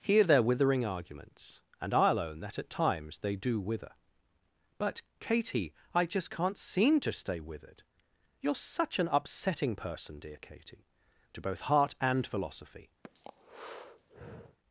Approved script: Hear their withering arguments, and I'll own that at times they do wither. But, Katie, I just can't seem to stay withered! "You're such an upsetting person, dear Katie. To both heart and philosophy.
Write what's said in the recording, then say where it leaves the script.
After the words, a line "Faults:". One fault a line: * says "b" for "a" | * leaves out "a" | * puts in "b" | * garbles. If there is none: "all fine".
Hear their withering arguments, and I'll own that at times they do wither. But, Katie, I just can't seem to stay withered! "You're such an upsetting person, dear Katie. To both heart and philosophy.
Faults:
all fine